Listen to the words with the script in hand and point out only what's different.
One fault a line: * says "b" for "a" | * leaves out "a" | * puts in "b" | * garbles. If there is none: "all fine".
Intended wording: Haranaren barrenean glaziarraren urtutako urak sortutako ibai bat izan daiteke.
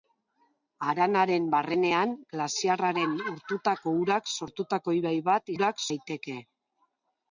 * says "urak" for "izan"